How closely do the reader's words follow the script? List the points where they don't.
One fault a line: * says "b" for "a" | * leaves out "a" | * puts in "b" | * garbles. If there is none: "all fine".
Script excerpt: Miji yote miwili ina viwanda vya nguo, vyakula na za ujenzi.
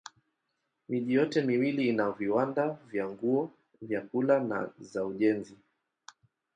all fine